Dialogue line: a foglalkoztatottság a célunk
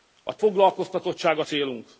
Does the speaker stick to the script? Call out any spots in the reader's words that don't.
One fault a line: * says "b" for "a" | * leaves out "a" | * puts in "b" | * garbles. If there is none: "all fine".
all fine